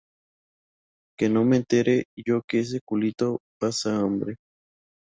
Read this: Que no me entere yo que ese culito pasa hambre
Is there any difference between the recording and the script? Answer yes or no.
no